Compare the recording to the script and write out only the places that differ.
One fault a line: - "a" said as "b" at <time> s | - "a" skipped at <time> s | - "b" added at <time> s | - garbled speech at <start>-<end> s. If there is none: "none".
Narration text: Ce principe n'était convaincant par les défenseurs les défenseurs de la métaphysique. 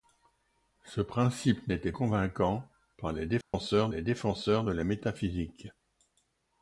none